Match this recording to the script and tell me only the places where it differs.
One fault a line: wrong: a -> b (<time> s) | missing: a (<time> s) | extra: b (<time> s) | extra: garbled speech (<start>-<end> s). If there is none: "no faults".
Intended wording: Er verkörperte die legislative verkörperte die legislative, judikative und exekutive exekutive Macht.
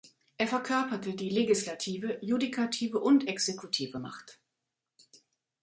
missing: verkörperte die legislative (2.2 s)
missing: exekutive (4.0 s)